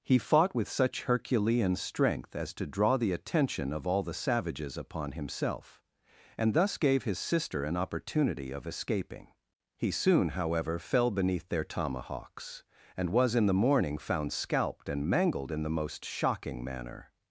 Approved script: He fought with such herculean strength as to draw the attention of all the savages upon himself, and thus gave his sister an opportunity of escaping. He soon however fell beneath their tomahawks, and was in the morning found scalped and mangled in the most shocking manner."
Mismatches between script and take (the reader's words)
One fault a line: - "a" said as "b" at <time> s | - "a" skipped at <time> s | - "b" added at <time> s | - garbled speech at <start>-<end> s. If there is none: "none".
none